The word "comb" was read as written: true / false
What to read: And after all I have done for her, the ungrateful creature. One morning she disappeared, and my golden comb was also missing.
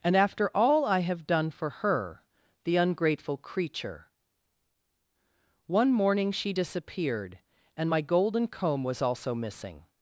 true